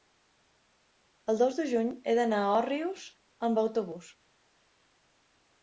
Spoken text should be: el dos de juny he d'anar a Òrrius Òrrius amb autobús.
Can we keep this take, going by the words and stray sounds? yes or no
no